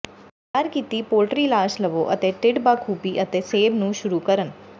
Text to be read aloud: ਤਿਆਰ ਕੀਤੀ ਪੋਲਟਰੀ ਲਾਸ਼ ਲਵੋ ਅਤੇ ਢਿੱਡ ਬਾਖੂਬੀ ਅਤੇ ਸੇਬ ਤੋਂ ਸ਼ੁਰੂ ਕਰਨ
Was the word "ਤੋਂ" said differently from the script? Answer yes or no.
yes